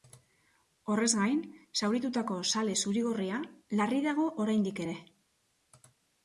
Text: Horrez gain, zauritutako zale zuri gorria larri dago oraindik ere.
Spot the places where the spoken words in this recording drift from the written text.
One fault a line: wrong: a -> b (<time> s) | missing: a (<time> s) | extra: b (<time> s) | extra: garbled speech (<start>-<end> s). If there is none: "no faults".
no faults